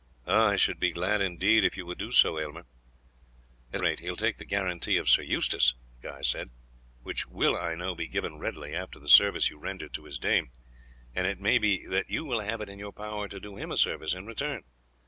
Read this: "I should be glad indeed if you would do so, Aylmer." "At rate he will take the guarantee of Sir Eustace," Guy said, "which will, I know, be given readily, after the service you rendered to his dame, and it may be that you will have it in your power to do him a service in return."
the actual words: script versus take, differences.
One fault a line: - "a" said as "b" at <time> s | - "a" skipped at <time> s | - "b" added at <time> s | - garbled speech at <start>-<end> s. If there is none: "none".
none